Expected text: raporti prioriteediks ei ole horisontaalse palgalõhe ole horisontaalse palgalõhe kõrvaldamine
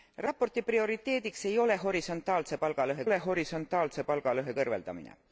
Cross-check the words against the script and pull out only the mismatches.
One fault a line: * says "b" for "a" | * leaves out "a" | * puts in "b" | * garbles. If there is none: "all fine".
all fine